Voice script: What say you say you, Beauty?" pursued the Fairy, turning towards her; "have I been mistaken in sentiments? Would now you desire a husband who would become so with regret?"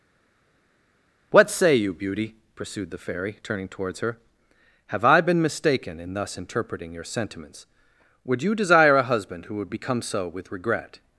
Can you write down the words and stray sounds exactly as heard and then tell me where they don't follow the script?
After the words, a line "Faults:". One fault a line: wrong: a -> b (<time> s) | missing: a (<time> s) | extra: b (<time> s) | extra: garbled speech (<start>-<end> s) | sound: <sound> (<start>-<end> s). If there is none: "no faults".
What say you, Beauty?" pursued the Fairy, turning towards her; "have I been mistaken in thus interpreting your sentiments? Would you desire a husband who would become so with regret?"
Faults:
missing: say you (1.9 s)
extra: thus interpreting your (6.1 s)
missing: now (8.4 s)